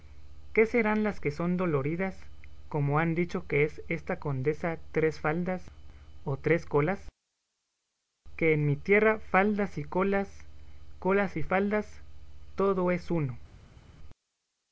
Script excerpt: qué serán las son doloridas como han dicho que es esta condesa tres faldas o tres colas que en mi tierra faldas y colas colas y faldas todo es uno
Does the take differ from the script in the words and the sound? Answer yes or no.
yes